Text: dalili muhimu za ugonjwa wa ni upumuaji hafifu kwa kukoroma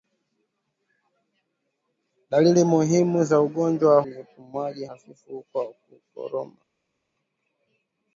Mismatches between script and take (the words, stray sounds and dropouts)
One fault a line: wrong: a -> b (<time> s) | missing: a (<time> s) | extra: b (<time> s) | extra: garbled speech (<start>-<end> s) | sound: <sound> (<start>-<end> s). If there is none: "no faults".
no faults